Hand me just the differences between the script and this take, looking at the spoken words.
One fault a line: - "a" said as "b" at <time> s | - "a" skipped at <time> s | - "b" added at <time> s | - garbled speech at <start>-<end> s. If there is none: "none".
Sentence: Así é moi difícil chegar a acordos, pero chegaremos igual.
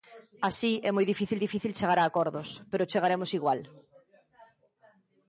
- "difícil" added at 1.4 s